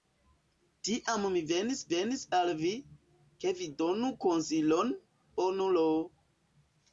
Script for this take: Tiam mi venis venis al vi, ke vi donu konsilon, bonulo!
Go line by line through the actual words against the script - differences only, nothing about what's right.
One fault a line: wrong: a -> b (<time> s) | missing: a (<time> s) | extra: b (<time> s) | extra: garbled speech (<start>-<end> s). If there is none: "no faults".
no faults